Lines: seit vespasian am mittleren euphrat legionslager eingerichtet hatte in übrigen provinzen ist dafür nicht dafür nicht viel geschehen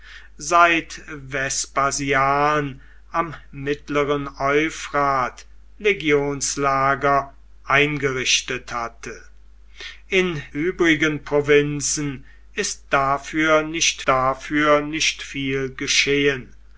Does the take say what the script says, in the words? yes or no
yes